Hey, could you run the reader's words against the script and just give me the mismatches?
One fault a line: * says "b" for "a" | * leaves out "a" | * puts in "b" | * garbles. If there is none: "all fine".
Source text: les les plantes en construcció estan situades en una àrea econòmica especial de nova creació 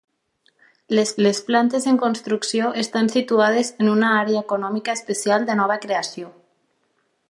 all fine